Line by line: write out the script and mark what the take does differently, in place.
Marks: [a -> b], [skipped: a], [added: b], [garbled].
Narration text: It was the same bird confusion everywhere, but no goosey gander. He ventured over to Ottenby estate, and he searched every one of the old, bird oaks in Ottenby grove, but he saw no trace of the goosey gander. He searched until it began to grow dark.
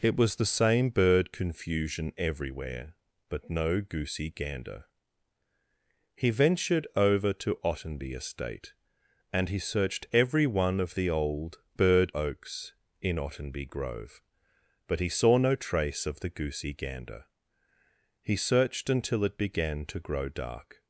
It was the same bird confusion everywhere, but no goosey gander. He ventured over to Ottenby estate, and he searched every one of the old, bird oaks in Ottenby grove, but he saw no trace of the goosey gander. He searched until it began to grow dark.